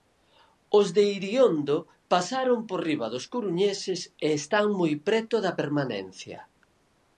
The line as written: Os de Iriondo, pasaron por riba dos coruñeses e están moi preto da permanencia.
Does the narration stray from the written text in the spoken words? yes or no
no